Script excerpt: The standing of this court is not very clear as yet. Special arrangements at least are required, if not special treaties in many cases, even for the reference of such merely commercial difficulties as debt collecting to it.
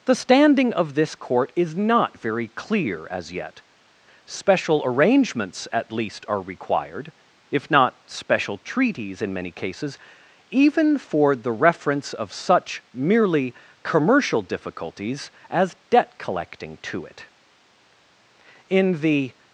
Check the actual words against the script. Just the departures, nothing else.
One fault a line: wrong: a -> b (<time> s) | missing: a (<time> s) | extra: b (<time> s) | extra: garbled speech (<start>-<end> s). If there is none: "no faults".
extra: In the (18.7 s)